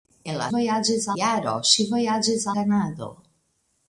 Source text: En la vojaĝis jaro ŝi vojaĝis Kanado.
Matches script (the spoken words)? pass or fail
pass